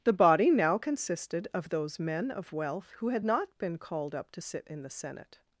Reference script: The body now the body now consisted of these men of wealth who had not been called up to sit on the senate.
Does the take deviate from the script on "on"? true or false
true